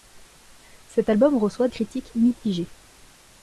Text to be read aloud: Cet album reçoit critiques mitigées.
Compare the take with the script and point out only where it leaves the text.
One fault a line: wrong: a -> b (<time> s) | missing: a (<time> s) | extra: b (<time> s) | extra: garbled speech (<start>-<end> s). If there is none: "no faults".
no faults